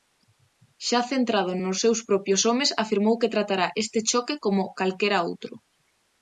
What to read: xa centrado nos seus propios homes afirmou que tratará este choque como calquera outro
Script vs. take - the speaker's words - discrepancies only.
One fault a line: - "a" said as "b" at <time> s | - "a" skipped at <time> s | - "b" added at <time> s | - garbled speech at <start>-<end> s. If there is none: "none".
none